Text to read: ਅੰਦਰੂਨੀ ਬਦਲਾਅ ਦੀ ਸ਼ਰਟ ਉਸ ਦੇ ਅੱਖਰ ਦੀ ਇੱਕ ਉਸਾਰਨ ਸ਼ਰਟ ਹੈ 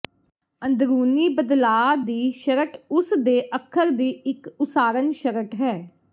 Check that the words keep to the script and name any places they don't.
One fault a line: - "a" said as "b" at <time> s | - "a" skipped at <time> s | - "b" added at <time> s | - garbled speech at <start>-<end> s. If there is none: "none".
none